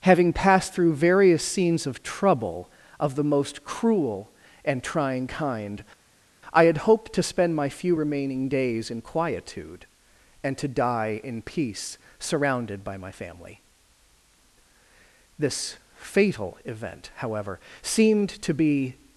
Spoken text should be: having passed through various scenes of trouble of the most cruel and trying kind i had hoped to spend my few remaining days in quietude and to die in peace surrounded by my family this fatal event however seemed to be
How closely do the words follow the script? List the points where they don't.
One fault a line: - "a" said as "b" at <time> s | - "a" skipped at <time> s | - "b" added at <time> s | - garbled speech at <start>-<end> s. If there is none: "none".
none